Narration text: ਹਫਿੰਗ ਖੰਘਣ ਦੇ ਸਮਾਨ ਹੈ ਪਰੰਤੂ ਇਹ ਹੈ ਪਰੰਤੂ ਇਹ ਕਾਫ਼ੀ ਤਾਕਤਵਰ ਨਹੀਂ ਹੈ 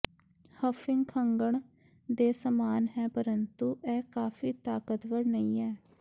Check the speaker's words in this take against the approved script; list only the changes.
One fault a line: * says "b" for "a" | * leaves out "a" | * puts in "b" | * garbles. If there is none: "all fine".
* leaves out "ਹੈ ਪਰੰਤੂ ਇਹ"